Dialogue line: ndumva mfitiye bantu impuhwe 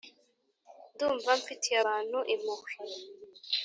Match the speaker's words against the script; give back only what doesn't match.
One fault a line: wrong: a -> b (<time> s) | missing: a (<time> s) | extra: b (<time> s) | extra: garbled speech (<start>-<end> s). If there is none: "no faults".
no faults